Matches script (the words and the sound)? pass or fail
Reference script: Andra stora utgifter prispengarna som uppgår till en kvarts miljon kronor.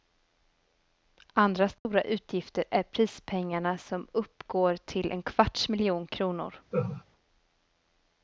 fail